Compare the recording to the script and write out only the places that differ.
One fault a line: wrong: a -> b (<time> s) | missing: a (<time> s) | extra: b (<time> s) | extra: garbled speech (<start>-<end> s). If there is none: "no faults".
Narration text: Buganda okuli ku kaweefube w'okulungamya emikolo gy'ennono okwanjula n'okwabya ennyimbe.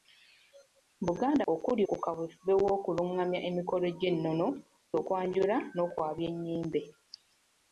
no faults